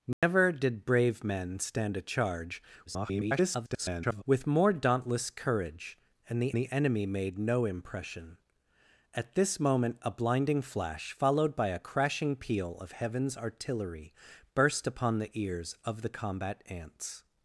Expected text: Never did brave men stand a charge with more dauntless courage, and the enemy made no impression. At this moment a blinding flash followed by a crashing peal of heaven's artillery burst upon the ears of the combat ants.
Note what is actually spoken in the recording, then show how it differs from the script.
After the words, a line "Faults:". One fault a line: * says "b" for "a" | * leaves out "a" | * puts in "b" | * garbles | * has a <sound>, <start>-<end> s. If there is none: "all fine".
Never did brave men stand a charge [garbled] with more dauntless courage, and the the enemy made no impression. At this moment a blinding flash followed by a crashing peal of heaven's artillery burst upon the ears of the combat ants.
Faults:
* has a dropout, 0.1-0.2 s
* garbles
* puts in "the"